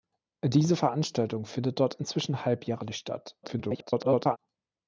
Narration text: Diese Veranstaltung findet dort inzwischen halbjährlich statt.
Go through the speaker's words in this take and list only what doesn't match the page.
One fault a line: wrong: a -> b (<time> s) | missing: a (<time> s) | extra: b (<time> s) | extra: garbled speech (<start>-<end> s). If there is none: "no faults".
extra: garbled speech (3.4-4.4 s)